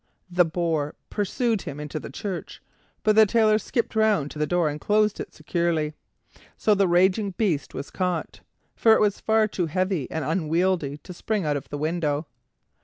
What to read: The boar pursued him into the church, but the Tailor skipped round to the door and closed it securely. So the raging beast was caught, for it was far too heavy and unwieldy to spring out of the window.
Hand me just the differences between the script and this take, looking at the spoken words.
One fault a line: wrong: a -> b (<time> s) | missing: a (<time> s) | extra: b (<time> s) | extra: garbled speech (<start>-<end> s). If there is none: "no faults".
no faults